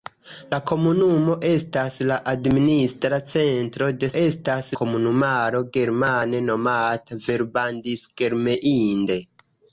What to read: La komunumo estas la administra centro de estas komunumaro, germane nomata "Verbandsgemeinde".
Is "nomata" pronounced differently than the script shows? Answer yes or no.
no